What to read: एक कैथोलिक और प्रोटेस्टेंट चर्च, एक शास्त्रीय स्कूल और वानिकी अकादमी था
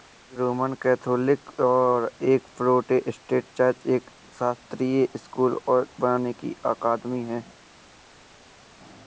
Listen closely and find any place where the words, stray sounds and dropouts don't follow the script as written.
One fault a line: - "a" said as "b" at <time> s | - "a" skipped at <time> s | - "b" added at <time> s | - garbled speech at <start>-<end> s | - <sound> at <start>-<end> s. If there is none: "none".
- "रोमन" added at 0.4 s
- "एक" added at 2.2 s
- "था" said as "है" at 7.2 s